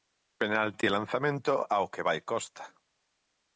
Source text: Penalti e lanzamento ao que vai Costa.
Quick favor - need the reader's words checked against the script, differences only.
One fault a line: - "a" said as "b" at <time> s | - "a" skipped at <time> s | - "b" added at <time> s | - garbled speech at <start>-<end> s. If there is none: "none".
none